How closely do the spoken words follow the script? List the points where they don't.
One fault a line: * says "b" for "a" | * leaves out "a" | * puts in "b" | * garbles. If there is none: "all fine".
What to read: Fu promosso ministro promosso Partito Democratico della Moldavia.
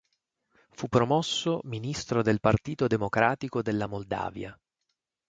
* says "del" for "promosso"